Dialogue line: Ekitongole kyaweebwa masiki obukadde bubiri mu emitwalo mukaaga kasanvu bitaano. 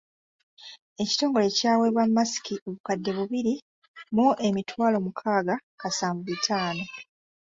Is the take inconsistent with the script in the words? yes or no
no